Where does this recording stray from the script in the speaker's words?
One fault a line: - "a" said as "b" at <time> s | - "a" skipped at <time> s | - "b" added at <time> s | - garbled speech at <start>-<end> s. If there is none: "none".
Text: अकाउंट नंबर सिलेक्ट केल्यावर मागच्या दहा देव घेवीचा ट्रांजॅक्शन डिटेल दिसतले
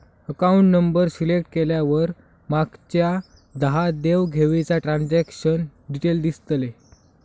none